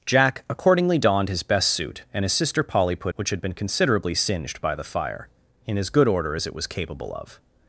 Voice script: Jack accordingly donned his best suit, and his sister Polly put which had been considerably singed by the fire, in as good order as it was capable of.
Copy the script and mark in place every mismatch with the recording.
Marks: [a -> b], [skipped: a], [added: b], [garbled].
Jack accordingly donned his best suit, and his sister Polly put which had been considerably singed by the fire, in as good order as it was capable of.